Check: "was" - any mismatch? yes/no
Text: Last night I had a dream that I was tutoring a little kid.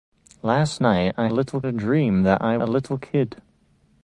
yes